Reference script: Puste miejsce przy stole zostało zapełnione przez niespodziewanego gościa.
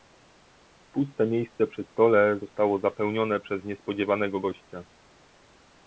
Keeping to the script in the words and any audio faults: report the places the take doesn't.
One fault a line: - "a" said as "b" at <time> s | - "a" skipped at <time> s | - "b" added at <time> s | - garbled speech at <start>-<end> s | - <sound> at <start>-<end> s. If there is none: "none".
none